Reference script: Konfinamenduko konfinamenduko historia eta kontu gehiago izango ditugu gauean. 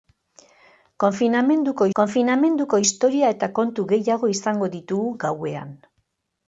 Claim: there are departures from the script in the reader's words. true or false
false